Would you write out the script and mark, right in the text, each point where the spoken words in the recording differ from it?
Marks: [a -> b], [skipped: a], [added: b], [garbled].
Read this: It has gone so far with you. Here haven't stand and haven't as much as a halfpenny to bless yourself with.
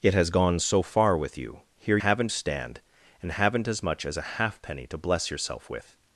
It has gone so far with you. Here haven't stand and haven't as much as a halfpenny to bless yourself with.